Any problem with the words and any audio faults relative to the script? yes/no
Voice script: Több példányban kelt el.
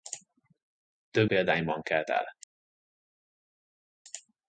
no